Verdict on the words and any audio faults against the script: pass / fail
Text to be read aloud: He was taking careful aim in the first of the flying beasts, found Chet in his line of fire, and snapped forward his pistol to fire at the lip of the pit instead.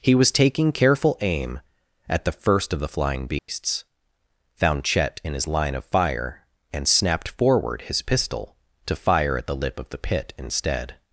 fail